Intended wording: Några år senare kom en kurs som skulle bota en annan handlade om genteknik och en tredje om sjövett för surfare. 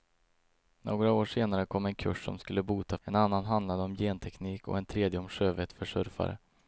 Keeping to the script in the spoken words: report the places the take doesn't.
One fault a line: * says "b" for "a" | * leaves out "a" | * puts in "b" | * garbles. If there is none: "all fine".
all fine